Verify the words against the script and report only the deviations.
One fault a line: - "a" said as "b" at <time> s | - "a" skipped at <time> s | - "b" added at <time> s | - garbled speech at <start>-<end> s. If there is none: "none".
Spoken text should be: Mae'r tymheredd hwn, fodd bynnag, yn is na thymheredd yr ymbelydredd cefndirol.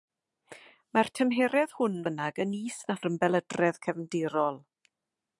- "fodd" skipped at 2.0 s
- "thymheredd" skipped at 3.0 s